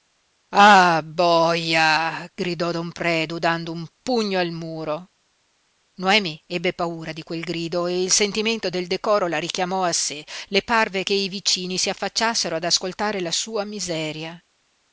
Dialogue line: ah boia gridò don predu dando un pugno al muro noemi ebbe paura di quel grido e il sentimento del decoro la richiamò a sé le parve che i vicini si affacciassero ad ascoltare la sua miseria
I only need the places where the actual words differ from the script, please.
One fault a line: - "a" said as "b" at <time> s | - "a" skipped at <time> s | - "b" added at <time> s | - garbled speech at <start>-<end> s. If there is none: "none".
none